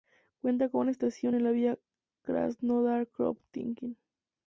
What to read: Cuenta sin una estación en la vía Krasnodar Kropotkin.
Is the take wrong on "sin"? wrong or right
wrong